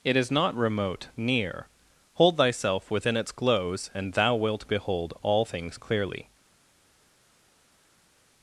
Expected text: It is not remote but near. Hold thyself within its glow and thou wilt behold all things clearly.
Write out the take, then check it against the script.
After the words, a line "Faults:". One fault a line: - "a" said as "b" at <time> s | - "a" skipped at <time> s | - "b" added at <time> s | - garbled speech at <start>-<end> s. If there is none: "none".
It is not remote near. Hold thyself within its glows and thou wilt behold all things clearly.
Faults:
- "but" skipped at 1.1 s
- "glow" said as "glows" at 3.3 s